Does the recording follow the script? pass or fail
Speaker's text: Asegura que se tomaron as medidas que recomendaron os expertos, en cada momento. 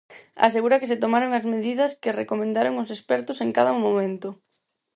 pass